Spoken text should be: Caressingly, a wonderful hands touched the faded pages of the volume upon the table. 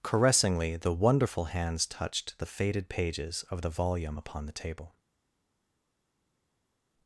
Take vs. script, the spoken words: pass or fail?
fail